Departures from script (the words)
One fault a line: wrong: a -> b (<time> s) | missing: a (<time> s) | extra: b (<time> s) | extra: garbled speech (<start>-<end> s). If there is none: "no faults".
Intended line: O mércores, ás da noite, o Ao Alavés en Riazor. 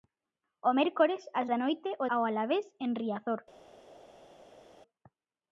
no faults